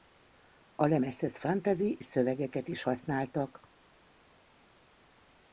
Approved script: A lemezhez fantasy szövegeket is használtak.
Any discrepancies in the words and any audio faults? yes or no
no